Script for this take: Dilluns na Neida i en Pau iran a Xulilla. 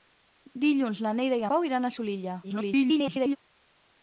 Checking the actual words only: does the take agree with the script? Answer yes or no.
no